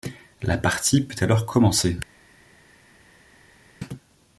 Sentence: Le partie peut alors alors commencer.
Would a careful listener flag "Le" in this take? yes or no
yes